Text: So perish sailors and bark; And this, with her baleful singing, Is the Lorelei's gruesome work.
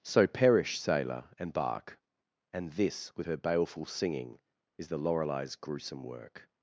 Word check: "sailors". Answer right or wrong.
wrong